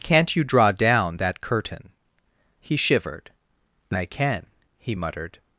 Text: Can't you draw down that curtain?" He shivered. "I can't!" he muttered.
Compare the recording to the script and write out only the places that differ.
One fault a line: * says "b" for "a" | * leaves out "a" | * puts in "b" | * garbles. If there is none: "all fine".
* says "can" for "can't"